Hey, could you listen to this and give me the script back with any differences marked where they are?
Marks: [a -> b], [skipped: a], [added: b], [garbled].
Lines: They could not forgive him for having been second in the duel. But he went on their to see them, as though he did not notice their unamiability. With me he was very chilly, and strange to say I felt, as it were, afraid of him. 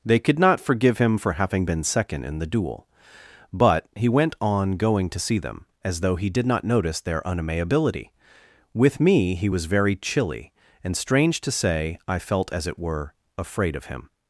They could not forgive him for having been second in the duel. But he went on [their -> going] to see them, as though he did not notice their unamiability. With me he was very chilly, and strange to say I felt, as it were, afraid of him.